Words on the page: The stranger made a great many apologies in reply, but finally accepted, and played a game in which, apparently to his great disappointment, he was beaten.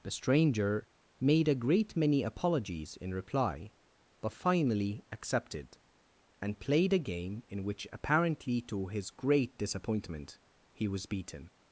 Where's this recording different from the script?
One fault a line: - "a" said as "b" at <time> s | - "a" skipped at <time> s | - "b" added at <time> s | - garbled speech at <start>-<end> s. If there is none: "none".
none